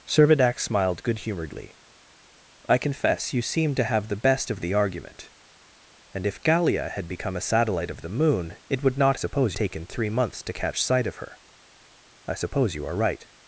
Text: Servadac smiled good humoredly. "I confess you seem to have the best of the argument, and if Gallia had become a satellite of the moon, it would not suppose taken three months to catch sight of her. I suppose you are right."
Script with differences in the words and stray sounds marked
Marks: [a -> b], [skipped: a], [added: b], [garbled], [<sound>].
Servadac smiled good humoredly. "I confess you seem to have the best of the argument, and if Gallia had become a satellite of the moon, it would not suppose taken three months to catch sight of her. I suppose you are right."